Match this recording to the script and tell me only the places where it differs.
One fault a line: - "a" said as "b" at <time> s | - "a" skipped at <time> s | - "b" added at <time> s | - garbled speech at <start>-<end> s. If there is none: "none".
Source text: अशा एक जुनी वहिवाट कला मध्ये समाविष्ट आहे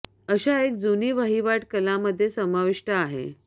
none